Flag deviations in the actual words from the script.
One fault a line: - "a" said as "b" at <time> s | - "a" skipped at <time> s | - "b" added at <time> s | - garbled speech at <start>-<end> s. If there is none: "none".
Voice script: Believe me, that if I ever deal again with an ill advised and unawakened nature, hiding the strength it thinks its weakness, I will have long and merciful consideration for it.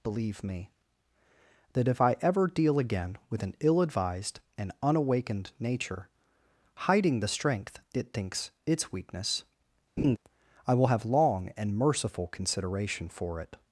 none